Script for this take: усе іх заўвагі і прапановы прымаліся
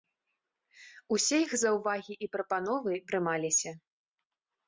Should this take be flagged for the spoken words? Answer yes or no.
no